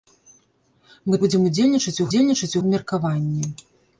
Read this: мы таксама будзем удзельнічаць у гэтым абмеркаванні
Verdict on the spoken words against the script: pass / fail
fail